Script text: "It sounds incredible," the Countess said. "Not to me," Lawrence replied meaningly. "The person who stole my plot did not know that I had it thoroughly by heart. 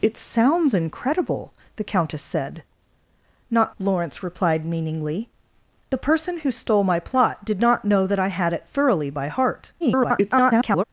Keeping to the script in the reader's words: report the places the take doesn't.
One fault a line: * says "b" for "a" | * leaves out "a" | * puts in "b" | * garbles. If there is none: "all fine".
* leaves out "to me"
* garbles